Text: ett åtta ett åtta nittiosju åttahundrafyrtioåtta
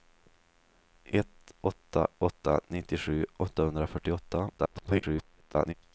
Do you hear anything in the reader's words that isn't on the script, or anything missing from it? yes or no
yes